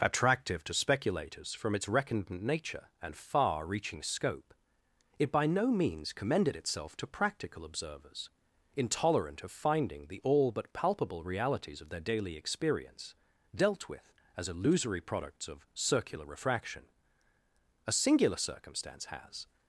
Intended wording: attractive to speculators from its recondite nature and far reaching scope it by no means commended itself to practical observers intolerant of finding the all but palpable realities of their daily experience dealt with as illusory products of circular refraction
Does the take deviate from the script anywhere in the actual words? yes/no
yes